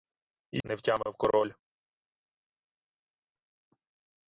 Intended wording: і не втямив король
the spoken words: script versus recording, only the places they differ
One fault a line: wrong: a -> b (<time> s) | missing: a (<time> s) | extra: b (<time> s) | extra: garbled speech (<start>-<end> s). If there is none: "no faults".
no faults